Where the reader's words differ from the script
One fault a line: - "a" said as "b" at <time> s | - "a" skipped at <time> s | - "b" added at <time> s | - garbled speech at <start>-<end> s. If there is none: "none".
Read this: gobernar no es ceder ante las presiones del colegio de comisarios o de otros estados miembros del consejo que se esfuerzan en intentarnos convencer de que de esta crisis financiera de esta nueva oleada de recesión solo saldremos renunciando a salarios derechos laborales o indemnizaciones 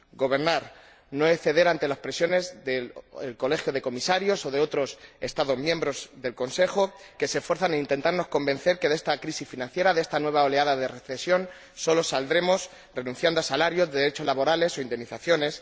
none